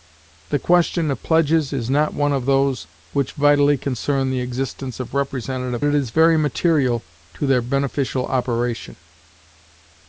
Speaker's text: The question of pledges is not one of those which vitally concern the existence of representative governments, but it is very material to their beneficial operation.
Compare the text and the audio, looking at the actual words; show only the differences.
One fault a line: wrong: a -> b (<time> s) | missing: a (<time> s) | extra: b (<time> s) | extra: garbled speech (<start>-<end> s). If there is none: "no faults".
missing: governments but (5.8 s)